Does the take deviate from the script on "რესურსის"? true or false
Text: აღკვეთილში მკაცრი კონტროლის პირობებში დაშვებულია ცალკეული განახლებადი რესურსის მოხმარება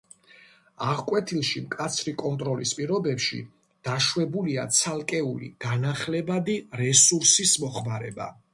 false